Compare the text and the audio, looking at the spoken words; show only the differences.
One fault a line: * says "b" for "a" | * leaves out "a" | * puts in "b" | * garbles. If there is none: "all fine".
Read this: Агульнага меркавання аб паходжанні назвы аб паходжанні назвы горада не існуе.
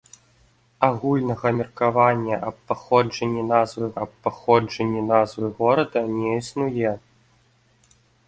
all fine